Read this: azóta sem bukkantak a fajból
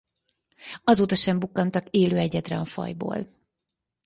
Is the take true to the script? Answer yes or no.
no